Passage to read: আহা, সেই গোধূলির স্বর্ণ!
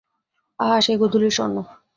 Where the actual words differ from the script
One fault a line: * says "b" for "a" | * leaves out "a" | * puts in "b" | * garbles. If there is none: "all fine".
all fine